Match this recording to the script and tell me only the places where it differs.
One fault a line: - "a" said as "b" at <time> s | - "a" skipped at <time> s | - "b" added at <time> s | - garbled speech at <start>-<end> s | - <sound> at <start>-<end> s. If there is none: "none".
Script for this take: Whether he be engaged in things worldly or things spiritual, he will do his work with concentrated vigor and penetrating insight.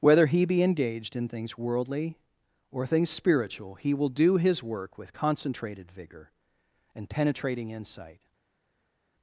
none